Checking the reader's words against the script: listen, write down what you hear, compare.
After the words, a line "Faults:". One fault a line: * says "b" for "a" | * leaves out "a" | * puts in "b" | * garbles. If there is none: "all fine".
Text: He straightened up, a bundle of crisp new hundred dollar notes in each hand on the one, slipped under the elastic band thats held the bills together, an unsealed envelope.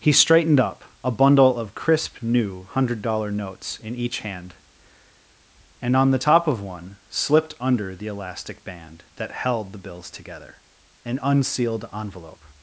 He straightened up, a bundle of crisp new hundred dollar notes in each hand and on the top of one, slipped under the elastic band that held the bills together, an unsealed envelope.
Faults:
* puts in "and"
* puts in "top of"
* says "that" for "thats"